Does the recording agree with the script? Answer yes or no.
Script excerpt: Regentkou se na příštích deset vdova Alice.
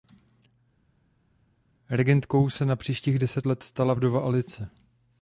no